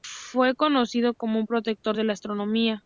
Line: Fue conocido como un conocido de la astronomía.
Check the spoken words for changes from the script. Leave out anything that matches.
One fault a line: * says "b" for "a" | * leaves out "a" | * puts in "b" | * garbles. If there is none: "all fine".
* says "protector" for "conocido"